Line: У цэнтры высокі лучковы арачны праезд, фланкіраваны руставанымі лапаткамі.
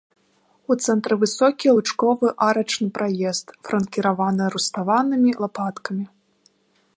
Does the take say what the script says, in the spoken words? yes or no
yes